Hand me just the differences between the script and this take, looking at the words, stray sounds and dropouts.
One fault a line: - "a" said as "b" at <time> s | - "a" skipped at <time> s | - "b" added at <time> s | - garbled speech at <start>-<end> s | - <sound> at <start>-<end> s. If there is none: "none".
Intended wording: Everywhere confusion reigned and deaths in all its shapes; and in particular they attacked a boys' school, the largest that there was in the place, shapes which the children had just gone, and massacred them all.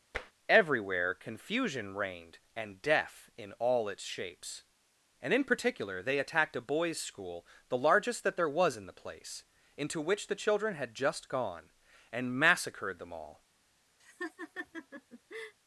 - tap at 0.1-0.3 s
- "deaths" said as "death" at 2.8 s
- "shapes" said as "into" at 9.8 s
- laugh at 14.0-15.5 s